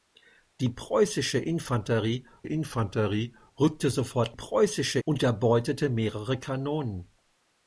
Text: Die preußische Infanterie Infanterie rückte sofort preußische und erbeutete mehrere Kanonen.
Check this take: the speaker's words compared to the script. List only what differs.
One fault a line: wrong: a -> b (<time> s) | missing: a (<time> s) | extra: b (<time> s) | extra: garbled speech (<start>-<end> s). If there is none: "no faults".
no faults